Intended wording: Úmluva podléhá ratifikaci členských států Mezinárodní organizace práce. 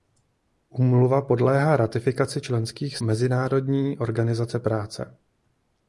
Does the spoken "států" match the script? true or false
false